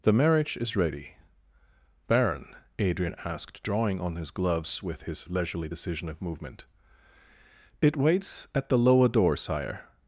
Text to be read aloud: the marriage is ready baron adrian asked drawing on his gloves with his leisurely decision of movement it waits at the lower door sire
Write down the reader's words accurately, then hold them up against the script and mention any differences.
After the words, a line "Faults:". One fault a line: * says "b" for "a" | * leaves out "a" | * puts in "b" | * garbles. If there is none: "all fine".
the marriage is ready baron adrian asked drawing on his gloves with his leisurely decision of movement it waits at the lower door sire
Faults:
all fine